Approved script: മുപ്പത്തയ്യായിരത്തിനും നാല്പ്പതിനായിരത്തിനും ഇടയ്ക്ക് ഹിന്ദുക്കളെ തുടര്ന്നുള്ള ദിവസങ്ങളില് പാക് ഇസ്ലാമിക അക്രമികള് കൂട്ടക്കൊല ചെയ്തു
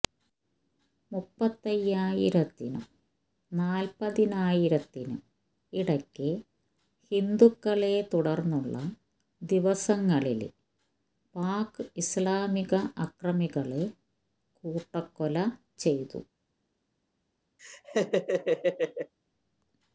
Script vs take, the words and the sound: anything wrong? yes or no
yes